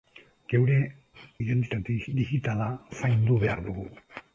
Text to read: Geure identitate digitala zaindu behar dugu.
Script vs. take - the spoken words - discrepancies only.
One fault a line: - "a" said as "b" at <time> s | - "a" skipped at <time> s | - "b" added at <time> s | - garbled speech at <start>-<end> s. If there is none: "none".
none